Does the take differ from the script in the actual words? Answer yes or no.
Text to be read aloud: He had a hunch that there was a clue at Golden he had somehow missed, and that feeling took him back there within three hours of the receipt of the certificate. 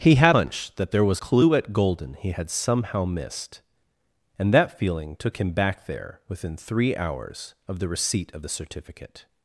yes